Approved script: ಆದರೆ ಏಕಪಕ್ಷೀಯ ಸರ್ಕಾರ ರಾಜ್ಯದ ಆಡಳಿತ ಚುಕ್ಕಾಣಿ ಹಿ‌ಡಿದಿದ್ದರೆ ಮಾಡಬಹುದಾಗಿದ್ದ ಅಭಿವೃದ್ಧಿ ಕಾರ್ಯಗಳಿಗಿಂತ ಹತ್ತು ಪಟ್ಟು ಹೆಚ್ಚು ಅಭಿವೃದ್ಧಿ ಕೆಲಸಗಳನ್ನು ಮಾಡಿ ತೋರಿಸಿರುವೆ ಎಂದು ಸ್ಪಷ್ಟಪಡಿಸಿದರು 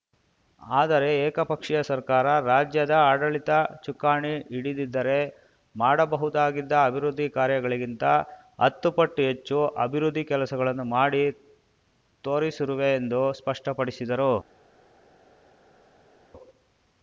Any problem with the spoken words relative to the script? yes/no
no